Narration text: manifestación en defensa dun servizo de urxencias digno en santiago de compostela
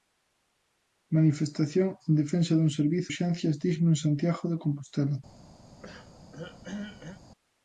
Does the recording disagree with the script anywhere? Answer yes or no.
yes